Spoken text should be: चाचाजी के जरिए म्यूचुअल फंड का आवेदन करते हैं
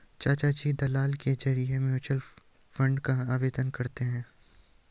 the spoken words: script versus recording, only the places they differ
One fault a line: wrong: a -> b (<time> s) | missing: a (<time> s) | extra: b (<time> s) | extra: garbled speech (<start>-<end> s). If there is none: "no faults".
extra: दलाल (0.7 s)